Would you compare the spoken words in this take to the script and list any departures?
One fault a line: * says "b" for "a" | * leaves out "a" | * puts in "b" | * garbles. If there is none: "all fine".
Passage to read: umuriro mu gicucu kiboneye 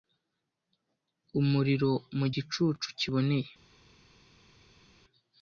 all fine